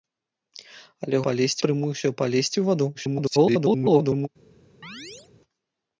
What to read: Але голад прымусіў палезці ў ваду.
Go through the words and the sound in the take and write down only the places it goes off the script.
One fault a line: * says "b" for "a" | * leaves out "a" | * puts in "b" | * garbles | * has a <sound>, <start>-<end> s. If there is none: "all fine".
* says "палезці" for "голад"
* garbles
* has a chirp, 4.8-5.3 s